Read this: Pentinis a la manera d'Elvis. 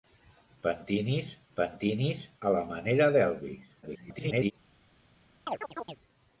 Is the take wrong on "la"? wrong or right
right